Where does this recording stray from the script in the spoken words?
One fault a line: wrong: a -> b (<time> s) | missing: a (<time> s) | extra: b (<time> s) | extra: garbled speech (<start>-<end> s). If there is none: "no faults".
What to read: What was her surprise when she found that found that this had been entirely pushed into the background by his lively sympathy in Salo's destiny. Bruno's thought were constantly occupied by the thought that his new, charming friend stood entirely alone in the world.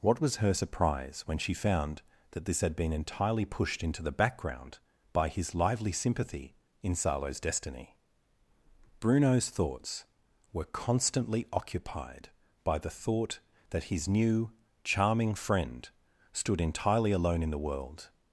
missing: found that (2.4 s)
wrong: thought -> thoughts (9.5 s)